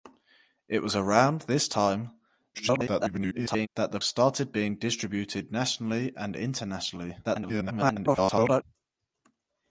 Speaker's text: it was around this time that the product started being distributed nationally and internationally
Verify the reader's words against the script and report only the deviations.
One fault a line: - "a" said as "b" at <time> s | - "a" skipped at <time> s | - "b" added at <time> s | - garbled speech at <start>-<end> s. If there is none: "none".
- garbled speech at 2.5-3.7 s
- "product" skipped at 4.0 s
- garbled speech at 7.2-8.6 s